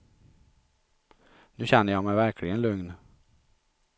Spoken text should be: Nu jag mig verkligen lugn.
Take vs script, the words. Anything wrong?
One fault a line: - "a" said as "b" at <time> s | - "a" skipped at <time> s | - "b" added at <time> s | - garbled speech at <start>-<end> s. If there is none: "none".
- "känner" added at 1.6 s